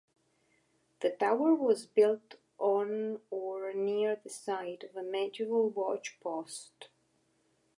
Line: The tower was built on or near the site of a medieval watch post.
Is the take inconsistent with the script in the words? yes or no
no